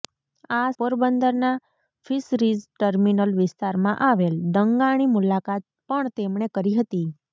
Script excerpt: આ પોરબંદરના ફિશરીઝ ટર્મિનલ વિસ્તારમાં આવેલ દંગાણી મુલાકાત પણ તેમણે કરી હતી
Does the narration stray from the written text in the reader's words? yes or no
no